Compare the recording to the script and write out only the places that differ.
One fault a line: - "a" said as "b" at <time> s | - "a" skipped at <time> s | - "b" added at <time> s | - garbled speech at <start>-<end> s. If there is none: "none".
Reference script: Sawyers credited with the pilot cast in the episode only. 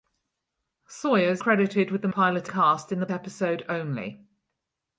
none